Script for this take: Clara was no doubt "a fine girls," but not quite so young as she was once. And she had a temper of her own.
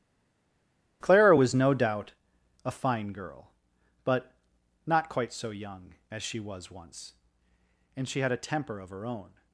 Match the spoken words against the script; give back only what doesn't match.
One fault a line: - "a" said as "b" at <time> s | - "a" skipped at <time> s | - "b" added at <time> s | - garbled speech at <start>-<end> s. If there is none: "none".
- "girls" said as "girl" at 3.1 s